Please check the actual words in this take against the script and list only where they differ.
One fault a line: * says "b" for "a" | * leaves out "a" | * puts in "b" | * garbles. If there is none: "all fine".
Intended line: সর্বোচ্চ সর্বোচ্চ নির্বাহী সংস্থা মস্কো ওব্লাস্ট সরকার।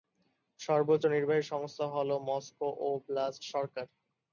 * leaves out "সর্বোচ্চ"
* puts in "হ'ল"